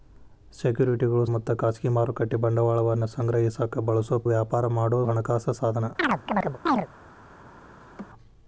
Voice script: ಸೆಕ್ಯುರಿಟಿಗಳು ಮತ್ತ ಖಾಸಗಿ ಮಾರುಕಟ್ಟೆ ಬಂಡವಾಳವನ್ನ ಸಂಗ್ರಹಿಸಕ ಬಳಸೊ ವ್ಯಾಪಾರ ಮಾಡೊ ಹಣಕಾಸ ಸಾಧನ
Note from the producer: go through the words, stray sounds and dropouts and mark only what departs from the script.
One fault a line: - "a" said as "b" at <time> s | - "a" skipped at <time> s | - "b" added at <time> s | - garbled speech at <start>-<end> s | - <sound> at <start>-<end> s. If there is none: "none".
- chirp at 6.0-6.9 s
- laugh at 7.8-8.1 s